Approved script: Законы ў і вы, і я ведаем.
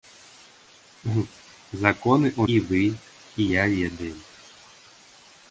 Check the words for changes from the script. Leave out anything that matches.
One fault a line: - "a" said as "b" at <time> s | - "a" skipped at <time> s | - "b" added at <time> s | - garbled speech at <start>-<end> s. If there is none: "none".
none